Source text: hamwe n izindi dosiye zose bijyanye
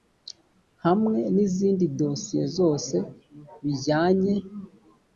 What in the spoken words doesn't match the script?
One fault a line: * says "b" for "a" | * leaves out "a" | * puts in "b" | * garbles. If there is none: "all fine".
all fine